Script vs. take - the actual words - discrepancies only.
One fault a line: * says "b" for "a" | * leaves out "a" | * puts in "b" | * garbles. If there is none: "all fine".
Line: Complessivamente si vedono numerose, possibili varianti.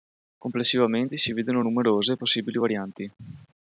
all fine